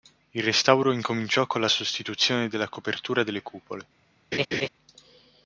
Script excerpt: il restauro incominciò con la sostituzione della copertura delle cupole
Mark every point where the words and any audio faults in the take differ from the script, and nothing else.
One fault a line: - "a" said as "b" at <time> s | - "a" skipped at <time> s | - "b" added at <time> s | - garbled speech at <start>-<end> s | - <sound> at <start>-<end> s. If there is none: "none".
- laugh at 4.3-4.7 s